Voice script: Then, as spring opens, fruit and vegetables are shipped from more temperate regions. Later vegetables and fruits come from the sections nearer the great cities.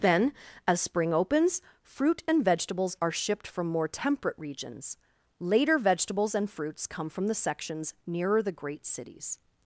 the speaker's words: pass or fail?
pass